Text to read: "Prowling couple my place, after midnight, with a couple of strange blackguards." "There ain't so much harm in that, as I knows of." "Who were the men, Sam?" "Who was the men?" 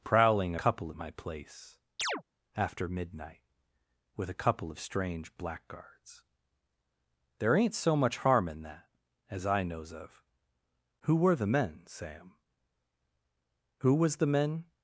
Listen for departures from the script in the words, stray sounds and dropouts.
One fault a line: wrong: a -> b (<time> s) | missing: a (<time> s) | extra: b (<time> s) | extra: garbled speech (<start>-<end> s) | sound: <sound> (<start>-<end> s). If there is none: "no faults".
sound: chirp (2.0-2.2 s)